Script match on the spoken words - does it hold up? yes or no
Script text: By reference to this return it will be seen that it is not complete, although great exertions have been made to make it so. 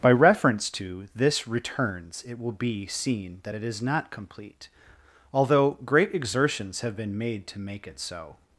no